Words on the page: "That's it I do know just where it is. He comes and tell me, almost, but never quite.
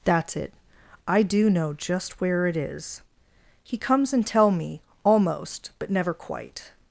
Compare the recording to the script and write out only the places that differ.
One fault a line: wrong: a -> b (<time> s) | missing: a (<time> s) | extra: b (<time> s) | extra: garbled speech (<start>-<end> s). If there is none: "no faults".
no faults